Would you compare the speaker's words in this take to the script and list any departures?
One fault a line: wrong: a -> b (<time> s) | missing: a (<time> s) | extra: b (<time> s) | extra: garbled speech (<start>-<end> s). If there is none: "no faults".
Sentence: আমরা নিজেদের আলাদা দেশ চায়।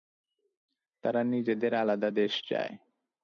wrong: আমরা -> তারা (1.0 s)